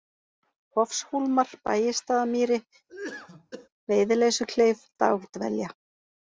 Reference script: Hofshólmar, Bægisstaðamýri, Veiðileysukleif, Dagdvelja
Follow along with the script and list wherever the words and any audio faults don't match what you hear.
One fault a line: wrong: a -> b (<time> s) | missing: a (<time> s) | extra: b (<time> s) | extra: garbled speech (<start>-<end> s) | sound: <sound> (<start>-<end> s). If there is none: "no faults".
sound: cough (2.9-3.7 s)